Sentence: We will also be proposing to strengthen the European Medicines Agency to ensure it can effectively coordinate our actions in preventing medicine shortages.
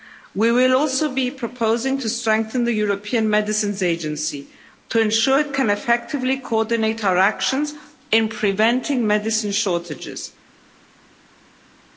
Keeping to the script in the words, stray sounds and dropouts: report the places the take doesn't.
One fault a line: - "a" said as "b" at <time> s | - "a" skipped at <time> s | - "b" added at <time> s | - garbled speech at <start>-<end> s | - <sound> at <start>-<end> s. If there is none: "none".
none